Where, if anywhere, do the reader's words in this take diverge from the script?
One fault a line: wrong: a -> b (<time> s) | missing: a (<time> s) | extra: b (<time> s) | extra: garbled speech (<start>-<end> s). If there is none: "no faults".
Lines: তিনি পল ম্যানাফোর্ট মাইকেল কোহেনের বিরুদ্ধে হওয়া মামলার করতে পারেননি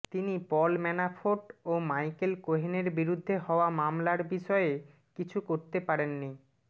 extra: ও (1.6 s)
extra: বিষয়ে কিছু (4.3 s)